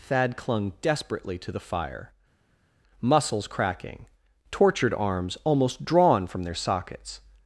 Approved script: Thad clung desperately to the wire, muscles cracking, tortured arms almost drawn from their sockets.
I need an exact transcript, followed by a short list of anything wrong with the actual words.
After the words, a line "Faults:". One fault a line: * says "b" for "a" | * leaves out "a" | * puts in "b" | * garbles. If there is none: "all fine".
Thad clung desperately to the fire, muscles cracking, tortured arms almost drawn from their sockets.
Faults:
* says "fire" for "wire"